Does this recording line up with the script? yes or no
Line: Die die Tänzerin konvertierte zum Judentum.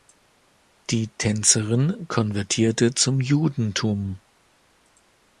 no